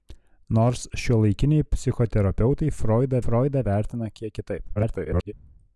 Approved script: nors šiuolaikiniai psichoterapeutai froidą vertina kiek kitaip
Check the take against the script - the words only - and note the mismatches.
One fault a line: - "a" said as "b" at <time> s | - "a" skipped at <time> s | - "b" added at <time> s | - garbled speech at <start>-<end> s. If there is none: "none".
- "froidą" added at 3.2 s
- garbled speech at 4.8-5.3 s